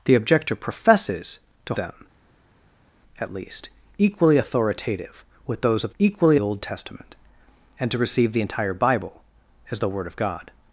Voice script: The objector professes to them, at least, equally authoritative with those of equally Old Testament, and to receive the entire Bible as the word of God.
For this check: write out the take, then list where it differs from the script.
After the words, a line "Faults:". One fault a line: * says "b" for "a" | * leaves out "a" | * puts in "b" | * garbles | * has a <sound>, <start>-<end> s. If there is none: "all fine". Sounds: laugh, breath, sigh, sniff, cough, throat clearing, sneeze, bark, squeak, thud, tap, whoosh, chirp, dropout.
The objector professes to them, at least, equally authoritative with those of equally Old Testament, and to receive the entire Bible as the word of God.
Faults:
all fine